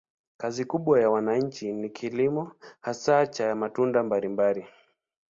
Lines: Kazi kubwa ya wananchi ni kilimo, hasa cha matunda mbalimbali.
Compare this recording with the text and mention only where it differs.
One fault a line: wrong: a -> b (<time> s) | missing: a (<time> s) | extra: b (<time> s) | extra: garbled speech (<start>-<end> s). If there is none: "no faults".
no faults